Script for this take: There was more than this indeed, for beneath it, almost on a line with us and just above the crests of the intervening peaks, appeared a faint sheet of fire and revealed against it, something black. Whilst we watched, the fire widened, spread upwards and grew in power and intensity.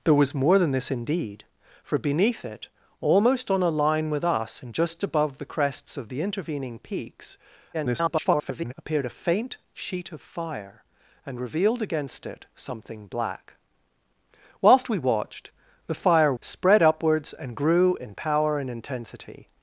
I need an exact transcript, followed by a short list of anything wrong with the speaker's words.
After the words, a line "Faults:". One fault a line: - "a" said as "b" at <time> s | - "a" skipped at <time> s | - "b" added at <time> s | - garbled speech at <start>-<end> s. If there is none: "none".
There was more than this indeed, for beneath it, almost on a line with us and just above the crests of the intervening peaks, [garbled] appeared a faint sheet of fire and revealed against it, something black. Whilst we watched, the fire spread upwards and grew in power and intensity.
Faults:
- garbled speech at 7.7-8.7 s
- "widened" skipped at 16.3 s